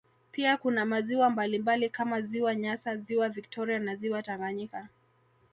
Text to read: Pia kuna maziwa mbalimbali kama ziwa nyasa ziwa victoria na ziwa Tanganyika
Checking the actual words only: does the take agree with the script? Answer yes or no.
yes